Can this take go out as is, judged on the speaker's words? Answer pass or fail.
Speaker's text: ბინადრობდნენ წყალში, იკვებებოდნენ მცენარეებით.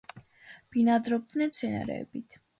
fail